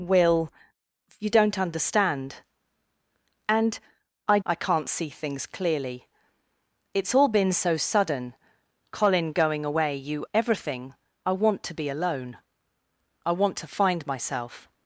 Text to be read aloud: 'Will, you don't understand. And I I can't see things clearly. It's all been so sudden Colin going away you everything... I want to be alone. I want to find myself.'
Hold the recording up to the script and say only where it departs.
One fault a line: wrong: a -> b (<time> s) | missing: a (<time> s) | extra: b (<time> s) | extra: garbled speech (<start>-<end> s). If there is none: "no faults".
no faults